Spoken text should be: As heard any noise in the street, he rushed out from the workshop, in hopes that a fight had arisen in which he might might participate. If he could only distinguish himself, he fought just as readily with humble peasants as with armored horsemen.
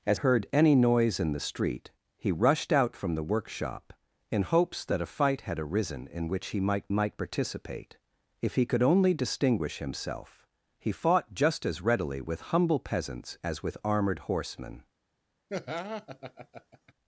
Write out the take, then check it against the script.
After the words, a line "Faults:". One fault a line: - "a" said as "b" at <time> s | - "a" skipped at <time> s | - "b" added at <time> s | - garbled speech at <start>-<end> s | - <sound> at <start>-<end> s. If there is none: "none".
As heard any noise in the street, he rushed out from the workshop, in hopes that a fight had arisen in which he might might participate. If he could only distinguish himself, he fought just as readily with humble peasants as with armored horsemen.
Faults:
- laugh at 15.5-16.9 s